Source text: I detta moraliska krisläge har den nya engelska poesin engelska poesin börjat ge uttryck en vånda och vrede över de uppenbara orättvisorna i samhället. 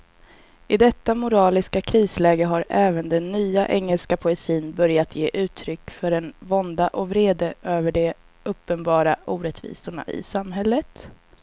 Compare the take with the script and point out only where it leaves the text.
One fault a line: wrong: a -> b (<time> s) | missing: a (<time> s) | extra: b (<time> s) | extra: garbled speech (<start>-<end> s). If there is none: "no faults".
extra: även (2.7 s)
missing: engelska poesin (4.7 s)
extra: för (5.9 s)